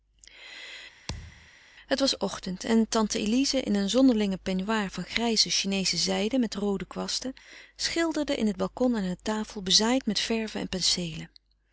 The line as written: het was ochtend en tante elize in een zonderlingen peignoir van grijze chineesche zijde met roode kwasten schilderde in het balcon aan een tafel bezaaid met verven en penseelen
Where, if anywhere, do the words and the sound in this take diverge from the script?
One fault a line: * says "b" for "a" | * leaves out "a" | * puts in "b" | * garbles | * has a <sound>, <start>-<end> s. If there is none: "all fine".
* has a thud, 1.1-1.5 s